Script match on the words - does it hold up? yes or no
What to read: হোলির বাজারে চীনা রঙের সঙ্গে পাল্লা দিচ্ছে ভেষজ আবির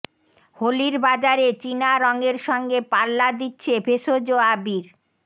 yes